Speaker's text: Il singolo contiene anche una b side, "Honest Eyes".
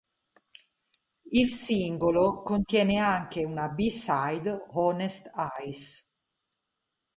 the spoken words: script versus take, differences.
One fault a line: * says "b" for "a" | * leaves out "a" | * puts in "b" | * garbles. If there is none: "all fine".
all fine